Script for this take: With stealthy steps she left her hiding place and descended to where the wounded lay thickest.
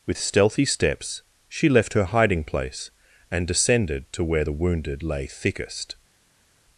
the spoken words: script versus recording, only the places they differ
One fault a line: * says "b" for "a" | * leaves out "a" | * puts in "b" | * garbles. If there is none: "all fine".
all fine